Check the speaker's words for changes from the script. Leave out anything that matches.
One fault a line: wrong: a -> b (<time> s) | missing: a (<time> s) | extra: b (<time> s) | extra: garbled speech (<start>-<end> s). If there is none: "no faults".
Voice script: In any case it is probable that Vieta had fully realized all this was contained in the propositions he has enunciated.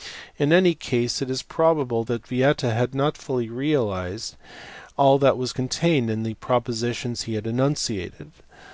extra: not (2.9 s)
wrong: this -> that (5.2 s)
wrong: has -> had (7.3 s)